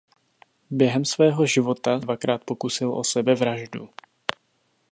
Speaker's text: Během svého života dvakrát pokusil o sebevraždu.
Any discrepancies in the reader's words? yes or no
no